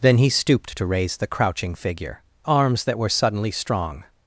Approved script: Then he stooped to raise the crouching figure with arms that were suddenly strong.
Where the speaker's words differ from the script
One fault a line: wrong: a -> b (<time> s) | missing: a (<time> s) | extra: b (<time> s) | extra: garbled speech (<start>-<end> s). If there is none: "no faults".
missing: with (2.2 s)